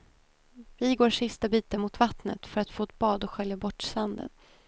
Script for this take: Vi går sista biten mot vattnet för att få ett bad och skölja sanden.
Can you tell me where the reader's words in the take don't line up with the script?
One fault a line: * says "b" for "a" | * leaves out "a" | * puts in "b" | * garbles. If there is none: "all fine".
* puts in "bort"